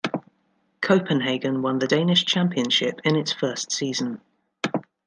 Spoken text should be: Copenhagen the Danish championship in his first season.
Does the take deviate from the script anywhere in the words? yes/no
yes